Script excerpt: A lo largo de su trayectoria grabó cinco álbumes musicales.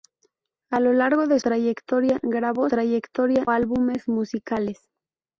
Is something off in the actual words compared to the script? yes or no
yes